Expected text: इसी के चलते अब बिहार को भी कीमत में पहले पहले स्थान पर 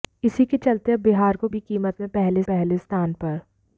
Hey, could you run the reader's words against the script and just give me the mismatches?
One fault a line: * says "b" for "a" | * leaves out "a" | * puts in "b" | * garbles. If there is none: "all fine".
all fine